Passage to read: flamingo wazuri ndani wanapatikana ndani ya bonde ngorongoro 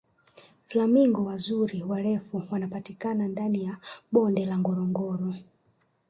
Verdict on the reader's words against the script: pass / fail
fail